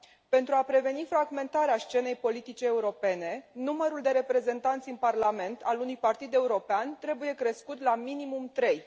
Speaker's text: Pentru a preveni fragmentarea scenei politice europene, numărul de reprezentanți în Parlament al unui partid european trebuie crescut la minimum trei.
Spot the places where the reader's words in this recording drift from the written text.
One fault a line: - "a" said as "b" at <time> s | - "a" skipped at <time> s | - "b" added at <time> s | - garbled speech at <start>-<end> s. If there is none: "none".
none